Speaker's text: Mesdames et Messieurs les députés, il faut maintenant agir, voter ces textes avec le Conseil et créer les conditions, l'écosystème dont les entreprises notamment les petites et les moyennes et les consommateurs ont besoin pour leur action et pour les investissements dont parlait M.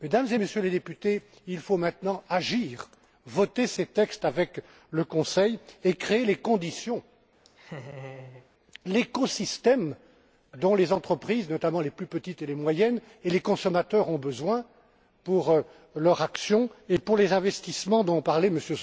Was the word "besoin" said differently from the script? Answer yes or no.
no